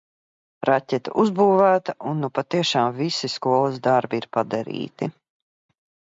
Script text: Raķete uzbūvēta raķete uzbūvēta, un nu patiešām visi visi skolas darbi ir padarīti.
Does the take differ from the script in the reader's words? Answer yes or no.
yes